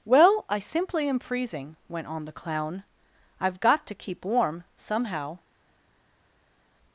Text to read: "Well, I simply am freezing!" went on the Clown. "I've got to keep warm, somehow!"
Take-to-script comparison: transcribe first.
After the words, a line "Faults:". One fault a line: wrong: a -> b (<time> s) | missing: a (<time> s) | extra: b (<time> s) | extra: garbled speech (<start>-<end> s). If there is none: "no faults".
"Well, I simply am freezing!" went on the Clown. "I've got to keep warm, somehow!"
Faults:
no faults